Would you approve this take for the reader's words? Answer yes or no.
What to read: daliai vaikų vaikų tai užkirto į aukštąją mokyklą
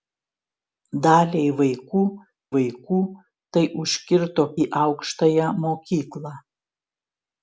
yes